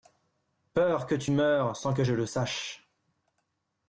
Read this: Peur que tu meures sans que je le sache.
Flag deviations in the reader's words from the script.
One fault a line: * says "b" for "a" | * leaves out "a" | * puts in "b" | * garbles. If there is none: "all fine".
all fine